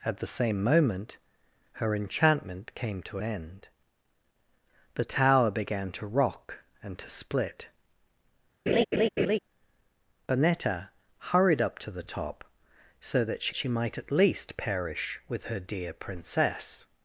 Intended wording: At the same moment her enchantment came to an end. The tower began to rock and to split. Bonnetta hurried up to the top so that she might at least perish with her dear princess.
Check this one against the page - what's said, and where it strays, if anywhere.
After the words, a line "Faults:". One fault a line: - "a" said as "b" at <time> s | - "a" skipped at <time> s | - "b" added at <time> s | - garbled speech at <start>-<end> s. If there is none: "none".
At the same moment her enchantment came to end. The tower began to rock and to split. Bonnetta hurried up to the top so that she she might at least perish with her dear princess.
Faults:
- "an" skipped at 3.2 s
- "she" added at 13.5 s